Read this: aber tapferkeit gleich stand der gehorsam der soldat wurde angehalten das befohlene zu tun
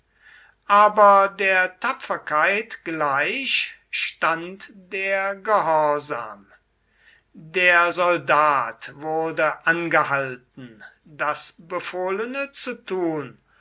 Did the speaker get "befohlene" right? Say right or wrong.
right